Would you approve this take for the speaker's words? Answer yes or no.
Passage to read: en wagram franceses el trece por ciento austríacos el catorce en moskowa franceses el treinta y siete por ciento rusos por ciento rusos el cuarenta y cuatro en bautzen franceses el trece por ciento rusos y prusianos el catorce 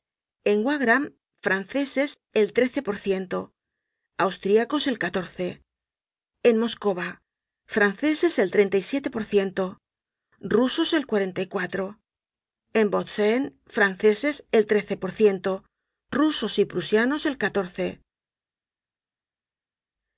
no